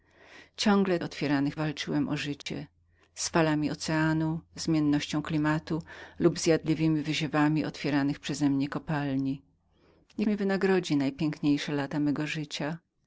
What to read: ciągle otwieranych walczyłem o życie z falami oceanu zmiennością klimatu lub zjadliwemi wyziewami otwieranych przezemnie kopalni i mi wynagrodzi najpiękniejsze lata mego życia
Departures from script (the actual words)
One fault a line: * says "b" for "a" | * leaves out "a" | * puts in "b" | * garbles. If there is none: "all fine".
all fine